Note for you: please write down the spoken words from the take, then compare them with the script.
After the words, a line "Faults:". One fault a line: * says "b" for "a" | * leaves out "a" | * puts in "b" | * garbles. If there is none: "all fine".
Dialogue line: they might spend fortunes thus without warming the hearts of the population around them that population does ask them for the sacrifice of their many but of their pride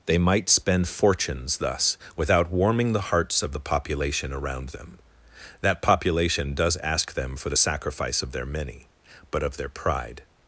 they might spend fortunes thus without warming the hearts of the population around them that population does ask them for the sacrifice of their many but of their pride
Faults:
all fine